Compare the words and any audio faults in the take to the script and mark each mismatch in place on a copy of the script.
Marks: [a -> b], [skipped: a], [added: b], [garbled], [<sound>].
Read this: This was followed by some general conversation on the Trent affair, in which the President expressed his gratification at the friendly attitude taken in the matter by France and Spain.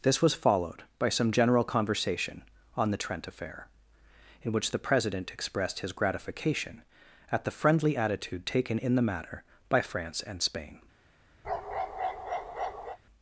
This was followed by some general conversation on the Trent affair, in which the President expressed his gratification at the friendly attitude taken in the matter by France and Spain. [bark]